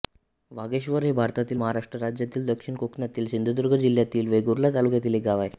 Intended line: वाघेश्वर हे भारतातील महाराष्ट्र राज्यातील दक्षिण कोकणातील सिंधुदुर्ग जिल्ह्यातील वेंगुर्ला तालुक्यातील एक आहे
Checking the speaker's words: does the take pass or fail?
fail